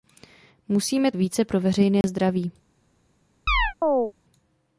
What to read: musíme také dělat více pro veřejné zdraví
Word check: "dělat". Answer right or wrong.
wrong